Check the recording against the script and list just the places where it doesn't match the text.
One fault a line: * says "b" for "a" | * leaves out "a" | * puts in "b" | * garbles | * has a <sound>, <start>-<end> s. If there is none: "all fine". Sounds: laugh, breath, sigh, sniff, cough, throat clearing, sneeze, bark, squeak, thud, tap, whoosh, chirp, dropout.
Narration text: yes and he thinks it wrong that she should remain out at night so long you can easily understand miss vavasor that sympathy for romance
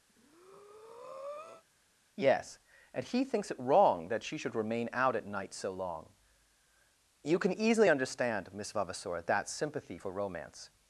* has a breath, 0.1-1.6 s